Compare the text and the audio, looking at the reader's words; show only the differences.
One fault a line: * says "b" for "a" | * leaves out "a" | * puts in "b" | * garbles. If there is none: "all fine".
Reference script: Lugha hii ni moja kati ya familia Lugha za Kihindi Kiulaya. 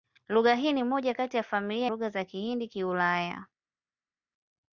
all fine